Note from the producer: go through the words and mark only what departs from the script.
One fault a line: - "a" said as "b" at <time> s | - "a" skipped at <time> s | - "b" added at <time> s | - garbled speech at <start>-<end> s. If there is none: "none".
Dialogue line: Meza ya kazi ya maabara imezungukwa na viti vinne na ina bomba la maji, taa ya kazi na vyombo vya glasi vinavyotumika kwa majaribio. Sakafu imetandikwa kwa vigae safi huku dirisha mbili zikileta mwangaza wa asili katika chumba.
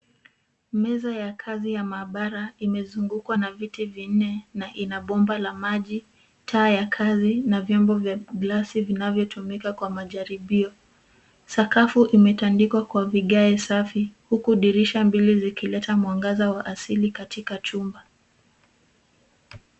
none